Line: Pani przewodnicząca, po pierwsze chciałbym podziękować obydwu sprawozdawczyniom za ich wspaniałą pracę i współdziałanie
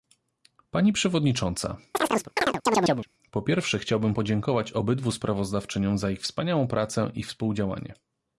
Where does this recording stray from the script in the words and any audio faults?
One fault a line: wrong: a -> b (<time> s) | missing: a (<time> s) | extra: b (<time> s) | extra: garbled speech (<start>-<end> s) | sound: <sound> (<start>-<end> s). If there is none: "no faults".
sound: chirp (1.9-3.1 s)